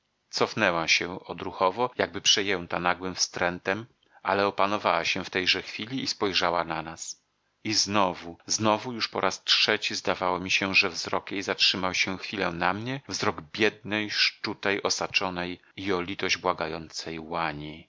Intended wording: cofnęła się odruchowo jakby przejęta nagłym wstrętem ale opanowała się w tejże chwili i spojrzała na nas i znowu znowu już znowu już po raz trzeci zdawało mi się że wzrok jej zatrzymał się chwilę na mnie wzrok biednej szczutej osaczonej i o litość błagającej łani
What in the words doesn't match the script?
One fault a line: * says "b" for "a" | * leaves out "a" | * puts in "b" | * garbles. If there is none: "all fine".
* leaves out "znowu już"